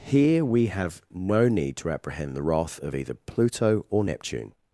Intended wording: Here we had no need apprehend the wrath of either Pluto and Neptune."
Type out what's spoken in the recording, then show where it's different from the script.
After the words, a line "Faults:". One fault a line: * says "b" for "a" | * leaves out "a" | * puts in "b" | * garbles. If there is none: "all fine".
Here we have no need to apprehend the wrath of either Pluto or Neptune."
Faults:
* says "have" for "had"
* puts in "to"
* says "or" for "and"